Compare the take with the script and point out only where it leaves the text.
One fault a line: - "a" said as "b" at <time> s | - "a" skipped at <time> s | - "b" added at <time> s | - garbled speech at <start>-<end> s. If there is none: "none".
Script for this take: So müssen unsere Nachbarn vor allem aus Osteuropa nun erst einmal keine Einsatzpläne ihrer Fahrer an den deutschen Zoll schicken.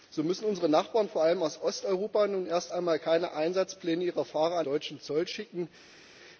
- "den" skipped at 4.7 s